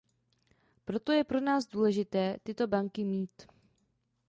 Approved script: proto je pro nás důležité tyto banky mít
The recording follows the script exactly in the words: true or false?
true